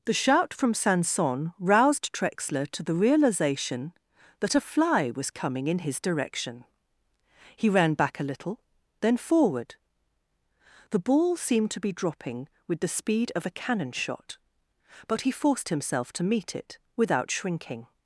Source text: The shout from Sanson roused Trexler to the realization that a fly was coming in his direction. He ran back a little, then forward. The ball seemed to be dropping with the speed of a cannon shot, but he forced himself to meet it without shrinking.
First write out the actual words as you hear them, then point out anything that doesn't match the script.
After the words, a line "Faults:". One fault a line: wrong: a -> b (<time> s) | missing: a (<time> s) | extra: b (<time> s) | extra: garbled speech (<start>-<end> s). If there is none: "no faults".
The shout from Sanson roused Trexler to the realization that a fly was coming in his direction. He ran back a little, then forward. The ball seemed to be dropping with the speed of a cannon shot, but he forced himself to meet it without shrinking.
Faults:
no faults